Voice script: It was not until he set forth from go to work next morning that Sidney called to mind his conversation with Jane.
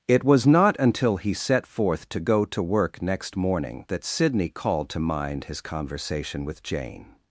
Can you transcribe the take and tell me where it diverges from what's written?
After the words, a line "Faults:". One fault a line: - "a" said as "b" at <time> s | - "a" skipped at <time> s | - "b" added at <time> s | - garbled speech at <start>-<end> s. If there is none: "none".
It was not until he set forth to go to work next morning that Sidney called to mind his conversation with Jane.
Faults:
- "from" said as "to" at 2.1 s